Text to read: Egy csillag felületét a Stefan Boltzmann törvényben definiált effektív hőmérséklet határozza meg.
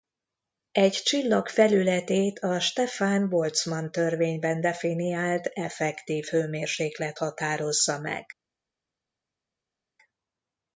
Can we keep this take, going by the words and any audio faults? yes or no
yes